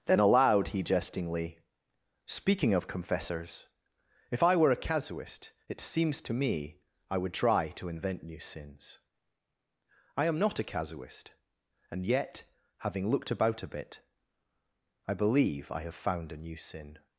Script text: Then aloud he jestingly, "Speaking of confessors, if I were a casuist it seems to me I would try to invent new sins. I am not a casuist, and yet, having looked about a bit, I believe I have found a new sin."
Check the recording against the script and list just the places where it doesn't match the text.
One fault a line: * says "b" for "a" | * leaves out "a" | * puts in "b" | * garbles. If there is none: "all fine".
all fine